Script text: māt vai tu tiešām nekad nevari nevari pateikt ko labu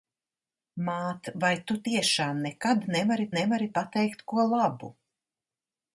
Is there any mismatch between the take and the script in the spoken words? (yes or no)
no